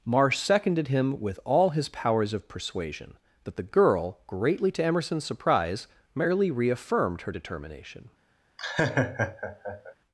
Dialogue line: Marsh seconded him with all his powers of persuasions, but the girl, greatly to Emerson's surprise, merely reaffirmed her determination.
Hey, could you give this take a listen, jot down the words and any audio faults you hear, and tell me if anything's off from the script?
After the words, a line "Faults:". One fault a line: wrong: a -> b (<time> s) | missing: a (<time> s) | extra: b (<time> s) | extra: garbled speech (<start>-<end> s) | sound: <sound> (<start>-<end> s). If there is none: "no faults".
Marsh seconded him with all his powers of persuasion, but the girl, greatly to Emerson's surprise, merely reaffirmed her determination.
Faults:
wrong: persuasions -> persuasion (2.5 s)
sound: laugh (8.6-9.9 s)